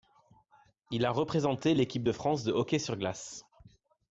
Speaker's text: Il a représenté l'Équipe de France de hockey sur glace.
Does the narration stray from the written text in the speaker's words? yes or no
no